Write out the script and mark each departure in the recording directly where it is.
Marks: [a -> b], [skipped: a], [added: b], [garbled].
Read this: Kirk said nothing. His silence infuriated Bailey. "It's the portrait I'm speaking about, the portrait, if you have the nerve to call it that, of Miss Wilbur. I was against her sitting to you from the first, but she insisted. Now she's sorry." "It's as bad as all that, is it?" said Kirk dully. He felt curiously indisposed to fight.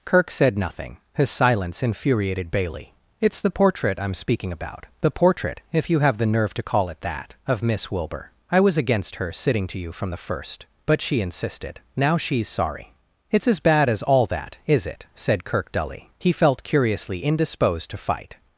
Kirk said nothing. His silence infuriated Bailey. "It's the portrait I'm speaking about, the portrait, if you have the nerve to call it that, of Miss Wilbur. I was against her sitting to you from the first, but she insisted. Now she's sorry." "It's as bad as all that, is it?" said Kirk dully. He felt curiously indisposed to fight.